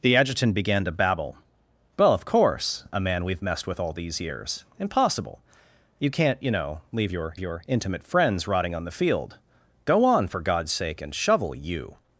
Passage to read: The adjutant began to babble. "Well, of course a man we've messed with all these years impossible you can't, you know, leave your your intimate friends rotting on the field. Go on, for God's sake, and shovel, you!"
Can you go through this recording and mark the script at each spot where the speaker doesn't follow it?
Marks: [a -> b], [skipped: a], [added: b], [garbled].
The adjutant began to babble. "Well, of course a man we've messed with all these years impossible you can't, you know, leave your your intimate friends rotting on the field. Go on, for God's sake, and shovel, you!"